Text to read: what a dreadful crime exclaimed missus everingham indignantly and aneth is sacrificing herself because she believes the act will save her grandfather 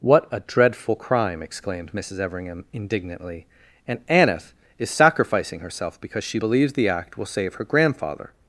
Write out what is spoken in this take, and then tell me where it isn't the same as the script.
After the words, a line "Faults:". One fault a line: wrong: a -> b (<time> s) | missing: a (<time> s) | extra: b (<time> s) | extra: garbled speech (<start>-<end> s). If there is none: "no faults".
what a dreadful crime exclaimed missus everingham indignantly and aneth is sacrificing herself because she believes the act will save her grandfather
Faults:
no faults